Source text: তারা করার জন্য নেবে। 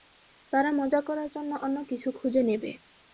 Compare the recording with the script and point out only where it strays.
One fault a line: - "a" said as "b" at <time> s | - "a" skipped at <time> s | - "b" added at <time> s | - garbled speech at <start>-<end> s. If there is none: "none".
- "মজা" added at 0.8 s
- "অন্য কিছু খুঁজে" added at 1.6 s